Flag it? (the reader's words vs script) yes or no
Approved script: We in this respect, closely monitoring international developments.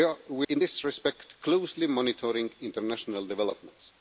no